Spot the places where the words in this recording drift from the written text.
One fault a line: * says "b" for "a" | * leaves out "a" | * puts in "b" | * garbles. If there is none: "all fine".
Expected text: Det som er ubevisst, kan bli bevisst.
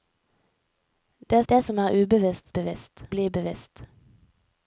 * puts in "det"
* says "bevisst" for "kan"